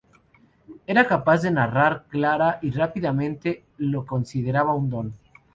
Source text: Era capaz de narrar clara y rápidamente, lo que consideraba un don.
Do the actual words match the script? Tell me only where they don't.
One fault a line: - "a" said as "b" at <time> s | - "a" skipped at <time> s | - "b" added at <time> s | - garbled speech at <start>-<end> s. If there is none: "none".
- "que" skipped at 4.1 s